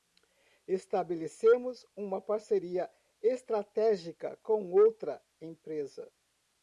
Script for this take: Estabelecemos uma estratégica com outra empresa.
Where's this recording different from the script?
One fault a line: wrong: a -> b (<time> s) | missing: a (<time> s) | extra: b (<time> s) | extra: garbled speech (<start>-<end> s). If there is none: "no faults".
extra: parceria (2.2 s)